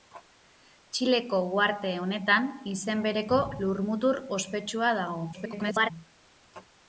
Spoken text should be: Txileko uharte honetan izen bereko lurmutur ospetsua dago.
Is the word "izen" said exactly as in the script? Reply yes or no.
yes